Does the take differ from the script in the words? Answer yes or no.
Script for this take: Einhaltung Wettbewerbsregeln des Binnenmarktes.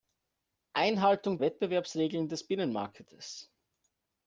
no